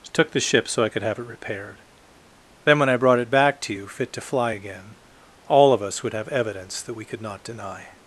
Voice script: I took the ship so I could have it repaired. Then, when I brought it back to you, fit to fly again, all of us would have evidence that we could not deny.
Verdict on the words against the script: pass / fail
fail